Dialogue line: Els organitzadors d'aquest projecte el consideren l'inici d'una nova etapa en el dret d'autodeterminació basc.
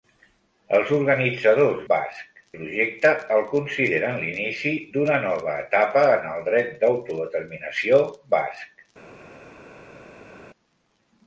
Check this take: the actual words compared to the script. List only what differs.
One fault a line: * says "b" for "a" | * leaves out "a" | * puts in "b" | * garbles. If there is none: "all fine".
* says "basc" for "d'aquest"